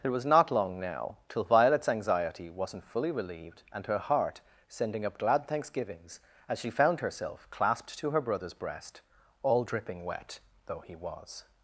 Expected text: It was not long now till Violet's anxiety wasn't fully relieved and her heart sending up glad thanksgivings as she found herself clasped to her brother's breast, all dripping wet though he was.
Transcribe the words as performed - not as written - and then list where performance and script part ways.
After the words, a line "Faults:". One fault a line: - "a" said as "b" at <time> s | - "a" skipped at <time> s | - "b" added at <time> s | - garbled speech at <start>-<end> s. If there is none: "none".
It was not long now till Violet's anxiety wasn't fully relieved and her heart sending up glad thanksgivings as she found herself clasped to her brother's breast, all dripping wet though he was.
Faults:
none